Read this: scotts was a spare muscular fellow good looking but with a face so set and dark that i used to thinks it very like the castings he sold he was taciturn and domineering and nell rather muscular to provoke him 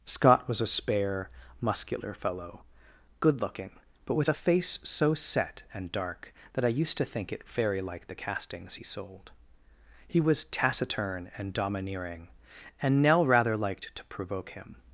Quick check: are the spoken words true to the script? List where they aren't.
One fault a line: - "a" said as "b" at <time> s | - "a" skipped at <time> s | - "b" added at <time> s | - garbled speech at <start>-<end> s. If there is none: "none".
- "scotts" said as "scott" at 0.1 s
- "thinks" said as "think" at 7.0 s
- "muscular" said as "liked" at 13.6 s